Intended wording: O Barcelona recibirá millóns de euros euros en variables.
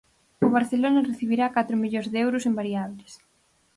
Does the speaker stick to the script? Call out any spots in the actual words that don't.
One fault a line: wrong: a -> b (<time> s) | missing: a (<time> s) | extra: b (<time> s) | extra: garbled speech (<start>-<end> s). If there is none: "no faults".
extra: catro (1.6 s)
missing: euros (2.4 s)